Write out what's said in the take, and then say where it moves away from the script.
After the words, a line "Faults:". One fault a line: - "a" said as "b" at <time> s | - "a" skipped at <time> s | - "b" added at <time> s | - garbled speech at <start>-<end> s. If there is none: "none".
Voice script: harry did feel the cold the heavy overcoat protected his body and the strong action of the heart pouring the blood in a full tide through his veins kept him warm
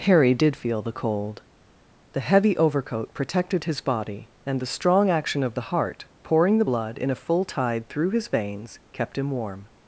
harry did feel the cold the heavy overcoat protected his body and the strong action of the heart pouring the blood in a full tide through his veins kept him warm
Faults:
none